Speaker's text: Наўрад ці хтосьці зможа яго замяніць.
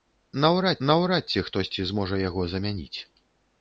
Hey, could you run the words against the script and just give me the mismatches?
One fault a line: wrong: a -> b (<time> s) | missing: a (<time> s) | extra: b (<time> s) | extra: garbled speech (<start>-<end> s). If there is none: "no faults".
extra: наўрад (0.9 s)